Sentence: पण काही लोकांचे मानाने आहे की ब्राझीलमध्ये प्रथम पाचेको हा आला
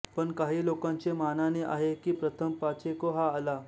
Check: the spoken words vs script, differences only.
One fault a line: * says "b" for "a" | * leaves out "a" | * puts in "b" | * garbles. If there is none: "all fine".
* leaves out "ब्राझीलमध्ये"